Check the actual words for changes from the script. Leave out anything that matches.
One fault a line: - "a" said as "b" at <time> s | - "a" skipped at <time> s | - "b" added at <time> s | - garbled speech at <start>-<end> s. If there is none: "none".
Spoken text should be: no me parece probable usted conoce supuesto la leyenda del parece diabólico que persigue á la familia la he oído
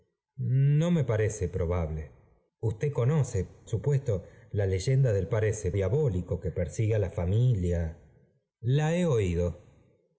none